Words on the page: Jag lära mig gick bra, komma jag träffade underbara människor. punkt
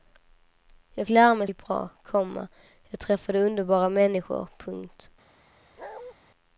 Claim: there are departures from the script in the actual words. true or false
false